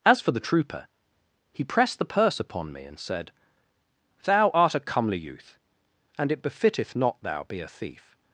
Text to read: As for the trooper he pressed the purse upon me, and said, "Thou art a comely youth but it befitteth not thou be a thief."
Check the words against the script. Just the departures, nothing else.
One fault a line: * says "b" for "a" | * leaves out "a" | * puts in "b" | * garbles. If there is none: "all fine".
* says "and" for "but"